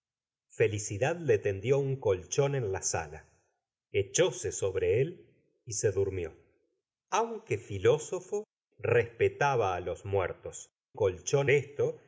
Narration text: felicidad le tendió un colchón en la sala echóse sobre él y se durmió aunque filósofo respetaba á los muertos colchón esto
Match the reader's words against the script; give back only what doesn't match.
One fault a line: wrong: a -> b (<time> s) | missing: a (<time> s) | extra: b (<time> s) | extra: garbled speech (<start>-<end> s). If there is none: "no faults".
no faults